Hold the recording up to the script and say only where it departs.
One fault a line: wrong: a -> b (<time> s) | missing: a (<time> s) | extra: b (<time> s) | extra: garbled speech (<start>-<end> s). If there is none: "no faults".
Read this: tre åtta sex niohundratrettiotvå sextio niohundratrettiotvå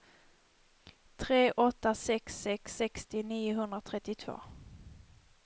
wrong: niohundratrettiotvå -> sex (2.4 s)